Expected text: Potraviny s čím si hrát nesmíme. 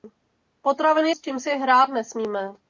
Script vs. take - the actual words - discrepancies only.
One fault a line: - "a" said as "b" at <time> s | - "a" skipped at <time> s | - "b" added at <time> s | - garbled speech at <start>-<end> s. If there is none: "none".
none